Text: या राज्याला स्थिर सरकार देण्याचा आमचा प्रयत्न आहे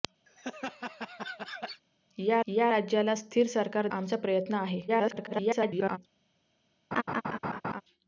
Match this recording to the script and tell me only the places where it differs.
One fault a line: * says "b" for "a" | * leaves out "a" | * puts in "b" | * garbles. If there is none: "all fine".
* puts in "या"
* leaves out "देण्याचा"
* garbles